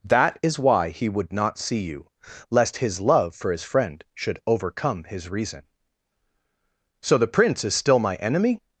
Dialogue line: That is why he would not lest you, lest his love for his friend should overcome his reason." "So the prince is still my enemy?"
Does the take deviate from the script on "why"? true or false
false